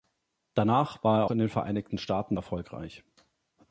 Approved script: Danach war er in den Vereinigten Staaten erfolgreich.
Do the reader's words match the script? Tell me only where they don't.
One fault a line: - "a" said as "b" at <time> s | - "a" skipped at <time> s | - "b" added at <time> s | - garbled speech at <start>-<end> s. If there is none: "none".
none